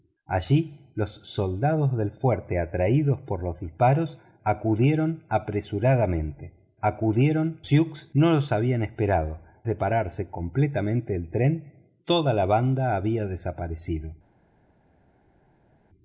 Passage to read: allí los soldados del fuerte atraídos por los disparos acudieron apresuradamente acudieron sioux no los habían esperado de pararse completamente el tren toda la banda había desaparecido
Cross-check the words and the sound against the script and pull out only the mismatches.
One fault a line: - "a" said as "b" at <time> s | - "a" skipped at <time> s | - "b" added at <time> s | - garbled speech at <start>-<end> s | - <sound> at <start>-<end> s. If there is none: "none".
none